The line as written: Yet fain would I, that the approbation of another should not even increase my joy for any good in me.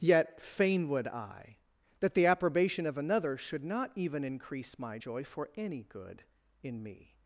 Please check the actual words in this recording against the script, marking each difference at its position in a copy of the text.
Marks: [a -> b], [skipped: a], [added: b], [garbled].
Yet fain would I, that the approbation of another should not even increase my joy for any good in me.